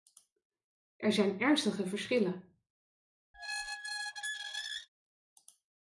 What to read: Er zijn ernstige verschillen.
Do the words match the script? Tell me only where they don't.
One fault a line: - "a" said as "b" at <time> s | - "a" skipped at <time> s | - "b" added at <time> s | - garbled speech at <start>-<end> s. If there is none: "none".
none